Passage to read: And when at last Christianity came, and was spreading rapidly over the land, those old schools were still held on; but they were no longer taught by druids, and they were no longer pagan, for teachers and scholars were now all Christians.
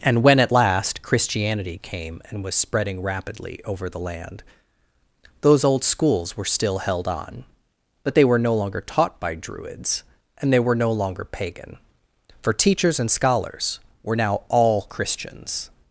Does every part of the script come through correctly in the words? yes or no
yes